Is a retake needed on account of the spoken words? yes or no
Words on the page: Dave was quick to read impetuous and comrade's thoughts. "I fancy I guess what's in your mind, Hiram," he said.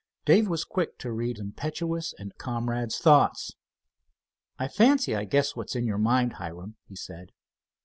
no